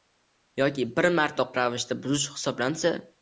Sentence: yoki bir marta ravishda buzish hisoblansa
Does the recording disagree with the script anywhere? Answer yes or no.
no